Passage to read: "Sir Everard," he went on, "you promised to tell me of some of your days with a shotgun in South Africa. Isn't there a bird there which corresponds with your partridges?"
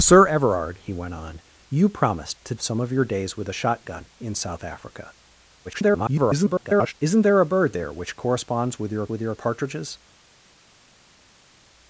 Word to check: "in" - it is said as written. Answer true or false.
true